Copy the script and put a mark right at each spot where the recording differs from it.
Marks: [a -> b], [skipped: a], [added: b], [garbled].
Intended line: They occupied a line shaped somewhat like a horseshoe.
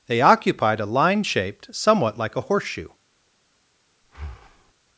They occupied a line shaped somewhat like a horseshoe.